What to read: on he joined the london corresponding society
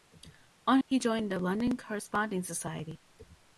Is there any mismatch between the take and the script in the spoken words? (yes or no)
no